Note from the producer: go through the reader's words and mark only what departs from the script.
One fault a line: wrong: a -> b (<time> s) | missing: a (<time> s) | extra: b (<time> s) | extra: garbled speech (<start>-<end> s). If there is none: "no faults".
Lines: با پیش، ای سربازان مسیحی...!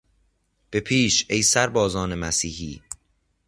wrong: با -> به (0.7 s)